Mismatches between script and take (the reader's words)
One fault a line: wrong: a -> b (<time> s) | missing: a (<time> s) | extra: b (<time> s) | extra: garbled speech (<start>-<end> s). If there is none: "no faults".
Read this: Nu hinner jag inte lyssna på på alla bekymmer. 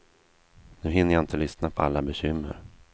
missing: på (1.8 s)